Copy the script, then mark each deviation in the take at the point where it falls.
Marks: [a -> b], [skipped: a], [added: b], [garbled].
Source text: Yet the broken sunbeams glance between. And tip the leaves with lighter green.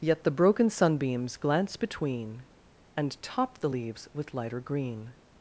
Yet the broken sunbeams glance between. And [tip -> top] the leaves with lighter green.